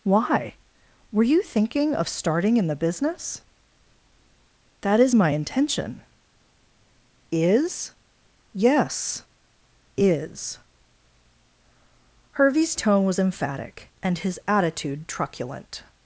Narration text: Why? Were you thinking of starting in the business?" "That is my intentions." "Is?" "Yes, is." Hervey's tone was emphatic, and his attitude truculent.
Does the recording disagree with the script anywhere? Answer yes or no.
yes